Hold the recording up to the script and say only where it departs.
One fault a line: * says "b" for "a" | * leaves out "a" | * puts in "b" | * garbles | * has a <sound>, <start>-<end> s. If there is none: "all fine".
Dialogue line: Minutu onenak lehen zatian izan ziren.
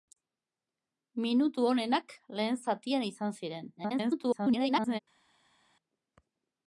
* garbles